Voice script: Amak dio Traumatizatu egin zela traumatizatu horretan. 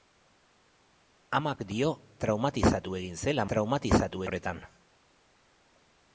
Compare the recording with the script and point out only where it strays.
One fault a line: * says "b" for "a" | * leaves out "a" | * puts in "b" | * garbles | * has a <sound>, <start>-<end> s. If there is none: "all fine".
all fine